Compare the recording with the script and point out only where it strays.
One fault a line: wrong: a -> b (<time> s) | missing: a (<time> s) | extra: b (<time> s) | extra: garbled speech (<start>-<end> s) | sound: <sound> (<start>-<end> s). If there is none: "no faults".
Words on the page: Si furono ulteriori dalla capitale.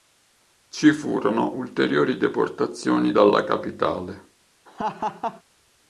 wrong: Si -> Ci (0.7 s)
extra: deportazioni (2.2 s)
sound: laugh (4.7-5.4 s)